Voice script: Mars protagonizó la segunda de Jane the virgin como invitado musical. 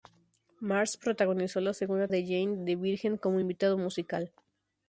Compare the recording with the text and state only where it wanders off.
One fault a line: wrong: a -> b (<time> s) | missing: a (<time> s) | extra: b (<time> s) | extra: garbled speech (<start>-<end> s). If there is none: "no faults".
no faults